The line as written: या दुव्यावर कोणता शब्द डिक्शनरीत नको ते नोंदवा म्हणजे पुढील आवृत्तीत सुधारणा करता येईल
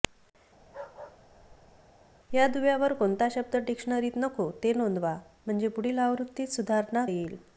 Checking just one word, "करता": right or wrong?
wrong